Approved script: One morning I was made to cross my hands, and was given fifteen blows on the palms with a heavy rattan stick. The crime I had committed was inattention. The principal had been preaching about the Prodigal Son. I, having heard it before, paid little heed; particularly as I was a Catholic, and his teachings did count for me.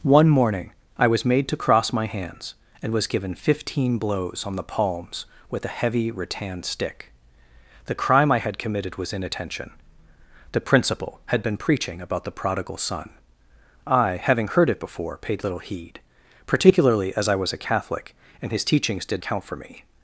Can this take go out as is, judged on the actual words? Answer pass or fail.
pass